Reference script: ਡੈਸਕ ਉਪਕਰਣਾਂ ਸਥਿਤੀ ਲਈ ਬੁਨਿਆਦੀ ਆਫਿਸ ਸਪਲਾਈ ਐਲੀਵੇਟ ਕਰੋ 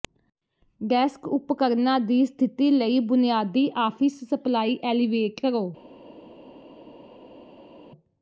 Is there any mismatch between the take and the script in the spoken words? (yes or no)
yes